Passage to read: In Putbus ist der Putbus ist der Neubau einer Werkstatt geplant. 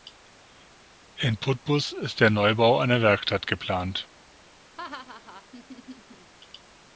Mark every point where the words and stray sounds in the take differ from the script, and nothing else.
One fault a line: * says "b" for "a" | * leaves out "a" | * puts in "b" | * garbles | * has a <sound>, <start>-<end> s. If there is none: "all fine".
* leaves out "Putbus ist der"
* has a laugh, 4.8-6.3 s